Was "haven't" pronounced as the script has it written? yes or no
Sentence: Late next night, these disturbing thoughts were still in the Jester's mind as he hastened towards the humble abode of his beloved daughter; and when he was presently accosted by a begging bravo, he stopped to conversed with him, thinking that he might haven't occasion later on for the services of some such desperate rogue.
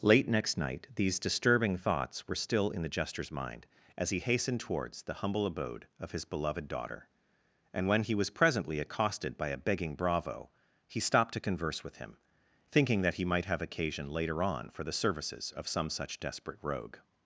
no